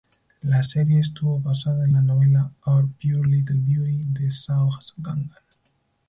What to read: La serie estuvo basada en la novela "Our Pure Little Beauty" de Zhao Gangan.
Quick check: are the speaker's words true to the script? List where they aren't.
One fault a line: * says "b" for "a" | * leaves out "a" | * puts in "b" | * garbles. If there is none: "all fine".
all fine